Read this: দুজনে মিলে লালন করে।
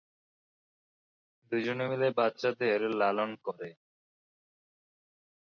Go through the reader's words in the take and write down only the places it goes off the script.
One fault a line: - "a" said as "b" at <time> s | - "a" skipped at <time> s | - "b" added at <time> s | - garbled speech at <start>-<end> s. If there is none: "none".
- "বাচ্চাদের" added at 2.2 s